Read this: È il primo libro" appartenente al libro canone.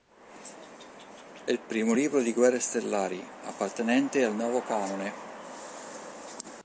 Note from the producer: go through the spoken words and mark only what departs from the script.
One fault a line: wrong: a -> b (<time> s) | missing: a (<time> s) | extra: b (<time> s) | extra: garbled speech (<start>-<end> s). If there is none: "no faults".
extra: di Guerre stellari (2.2 s)
wrong: libro -> nuovo (4.3 s)